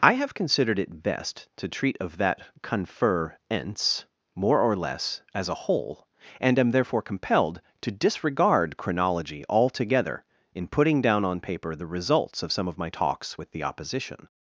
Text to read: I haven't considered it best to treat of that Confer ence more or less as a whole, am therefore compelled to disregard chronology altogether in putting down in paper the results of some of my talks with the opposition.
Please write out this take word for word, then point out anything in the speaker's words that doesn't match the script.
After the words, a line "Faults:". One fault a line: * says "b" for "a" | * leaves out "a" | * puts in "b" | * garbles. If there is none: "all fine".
I have considered it best to treat of that Confer ence more or less as a whole, and am therefore compelled to disregard chronology altogether in putting down on paper the results of some of my talks with the opposition.
Faults:
* says "have" for "haven't"
* puts in "and"
* says "on" for "in"